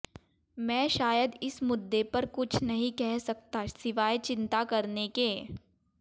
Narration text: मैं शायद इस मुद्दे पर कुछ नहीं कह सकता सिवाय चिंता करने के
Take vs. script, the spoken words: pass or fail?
pass